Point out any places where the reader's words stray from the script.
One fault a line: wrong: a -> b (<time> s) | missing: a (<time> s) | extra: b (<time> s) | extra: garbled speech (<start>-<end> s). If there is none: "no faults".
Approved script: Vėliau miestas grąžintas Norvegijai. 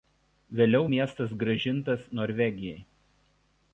no faults